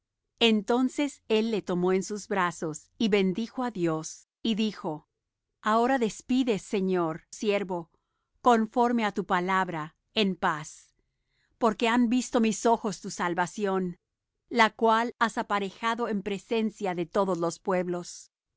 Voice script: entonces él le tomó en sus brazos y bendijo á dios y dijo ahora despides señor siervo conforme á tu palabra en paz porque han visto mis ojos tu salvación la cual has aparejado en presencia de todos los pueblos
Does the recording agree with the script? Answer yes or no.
yes